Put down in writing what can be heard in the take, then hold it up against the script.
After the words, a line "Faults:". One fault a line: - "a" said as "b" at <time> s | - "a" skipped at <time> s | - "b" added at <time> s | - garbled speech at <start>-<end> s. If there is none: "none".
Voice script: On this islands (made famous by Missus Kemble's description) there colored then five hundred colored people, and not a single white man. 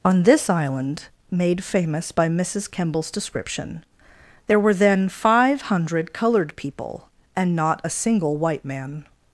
On this island (made famous by Missus Kemble's description) there were then five hundred colored people, and not a single white man.
Faults:
- "islands" said as "island" at 0.5 s
- "colored" said as "were" at 4.6 s